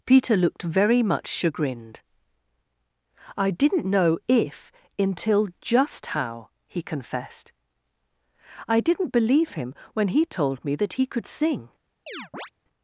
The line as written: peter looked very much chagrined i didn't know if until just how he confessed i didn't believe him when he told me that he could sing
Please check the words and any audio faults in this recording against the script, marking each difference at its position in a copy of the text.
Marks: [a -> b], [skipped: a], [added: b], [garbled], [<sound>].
peter looked very much chagrined i didn't know if until just how he confessed i didn't believe him when he told me that he could sing [chirp]